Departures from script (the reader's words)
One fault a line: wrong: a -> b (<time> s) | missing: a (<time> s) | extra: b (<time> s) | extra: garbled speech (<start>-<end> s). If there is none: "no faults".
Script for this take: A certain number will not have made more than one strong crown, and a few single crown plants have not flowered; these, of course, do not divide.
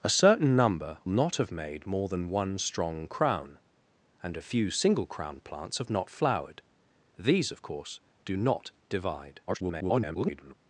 missing: will (1.0 s)
extra: garbled speech (9.5-10.5 s)